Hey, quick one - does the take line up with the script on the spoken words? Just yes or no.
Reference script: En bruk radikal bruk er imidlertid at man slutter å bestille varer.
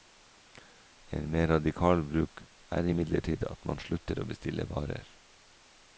no